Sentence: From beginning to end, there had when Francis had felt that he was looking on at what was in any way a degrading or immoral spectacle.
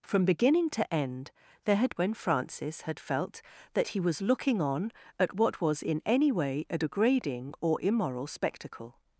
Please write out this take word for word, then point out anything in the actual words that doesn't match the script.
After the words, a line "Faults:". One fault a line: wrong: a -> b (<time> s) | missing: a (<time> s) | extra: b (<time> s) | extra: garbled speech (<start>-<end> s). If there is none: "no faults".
From beginning to end, there had when Francis had felt that he was looking on at what was in any way a degrading or immoral spectacle.
Faults:
no faults